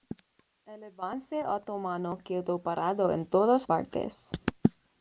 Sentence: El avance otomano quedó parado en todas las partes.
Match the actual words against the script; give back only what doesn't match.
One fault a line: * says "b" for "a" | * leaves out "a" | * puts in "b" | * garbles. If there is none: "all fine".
* leaves out "las"